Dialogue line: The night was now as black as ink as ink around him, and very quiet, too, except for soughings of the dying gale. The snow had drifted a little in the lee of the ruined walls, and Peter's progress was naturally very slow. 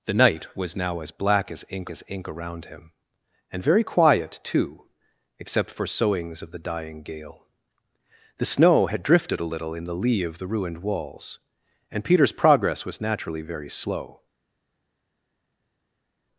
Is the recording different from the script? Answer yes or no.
no